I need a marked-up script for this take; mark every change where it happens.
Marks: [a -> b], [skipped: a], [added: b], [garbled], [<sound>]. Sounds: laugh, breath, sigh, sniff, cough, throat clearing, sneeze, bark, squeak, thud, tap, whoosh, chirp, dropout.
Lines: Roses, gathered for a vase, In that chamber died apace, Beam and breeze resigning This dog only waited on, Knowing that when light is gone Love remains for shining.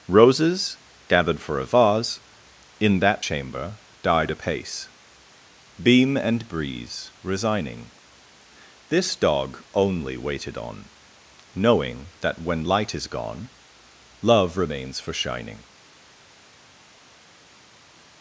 Roses, gathered for a vase, In that chamber died apace, Beam and breeze resigning This dog only waited on, Knowing that when light is gone Love remains for shining.